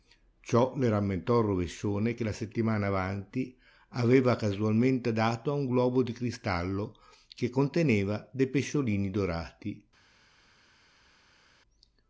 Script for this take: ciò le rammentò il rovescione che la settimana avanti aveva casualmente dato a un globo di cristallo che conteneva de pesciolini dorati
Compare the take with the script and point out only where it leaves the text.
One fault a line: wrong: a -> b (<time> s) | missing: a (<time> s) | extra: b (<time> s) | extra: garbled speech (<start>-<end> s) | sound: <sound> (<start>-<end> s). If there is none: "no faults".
no faults